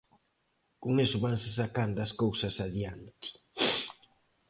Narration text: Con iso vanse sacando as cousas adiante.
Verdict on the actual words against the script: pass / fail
pass